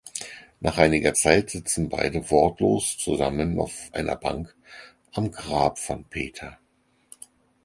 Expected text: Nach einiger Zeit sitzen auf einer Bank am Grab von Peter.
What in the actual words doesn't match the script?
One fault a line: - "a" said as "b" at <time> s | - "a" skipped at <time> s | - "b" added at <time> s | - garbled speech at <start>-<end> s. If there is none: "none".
- "beide wortlos zusammen" added at 1.9 s